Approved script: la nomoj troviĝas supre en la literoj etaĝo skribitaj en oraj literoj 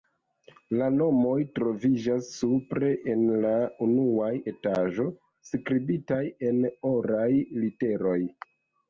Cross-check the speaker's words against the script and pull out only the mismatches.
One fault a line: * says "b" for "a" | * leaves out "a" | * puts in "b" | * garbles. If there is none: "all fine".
* says "unua" for "literoj"